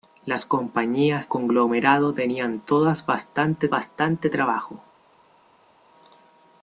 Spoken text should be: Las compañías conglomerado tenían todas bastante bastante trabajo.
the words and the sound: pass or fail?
pass